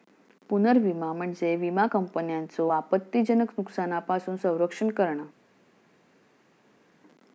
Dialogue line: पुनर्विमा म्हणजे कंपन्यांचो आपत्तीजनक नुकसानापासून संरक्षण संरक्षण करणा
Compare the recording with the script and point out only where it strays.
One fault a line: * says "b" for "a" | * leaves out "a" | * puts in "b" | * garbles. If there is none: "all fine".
* puts in "विमा"
* leaves out "संरक्षण"